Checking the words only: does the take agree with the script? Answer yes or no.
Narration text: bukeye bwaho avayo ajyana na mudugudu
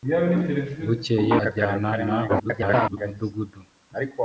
no